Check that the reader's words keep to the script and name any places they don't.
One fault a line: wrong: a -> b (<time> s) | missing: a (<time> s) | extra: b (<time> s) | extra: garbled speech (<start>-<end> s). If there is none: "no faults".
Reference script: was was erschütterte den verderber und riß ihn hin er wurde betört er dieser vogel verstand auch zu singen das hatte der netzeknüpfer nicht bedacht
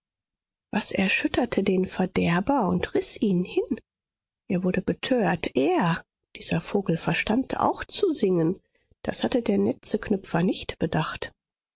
missing: was (0.9 s)